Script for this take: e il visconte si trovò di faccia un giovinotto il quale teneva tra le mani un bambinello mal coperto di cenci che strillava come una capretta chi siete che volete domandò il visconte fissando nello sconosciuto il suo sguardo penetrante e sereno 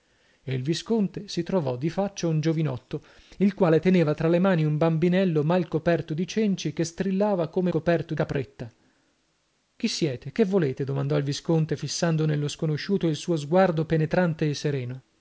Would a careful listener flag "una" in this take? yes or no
yes